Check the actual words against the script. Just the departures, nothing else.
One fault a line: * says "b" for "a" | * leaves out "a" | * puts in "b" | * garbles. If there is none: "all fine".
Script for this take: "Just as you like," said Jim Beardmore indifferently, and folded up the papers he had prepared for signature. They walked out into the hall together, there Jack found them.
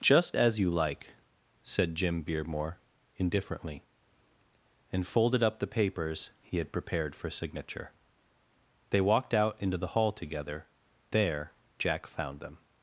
all fine